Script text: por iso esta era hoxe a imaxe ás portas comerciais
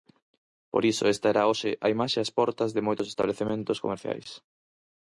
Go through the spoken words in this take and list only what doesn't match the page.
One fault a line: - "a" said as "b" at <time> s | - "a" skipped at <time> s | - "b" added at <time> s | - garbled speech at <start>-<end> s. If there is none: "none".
- "de moitos establecementos" added at 2.8 s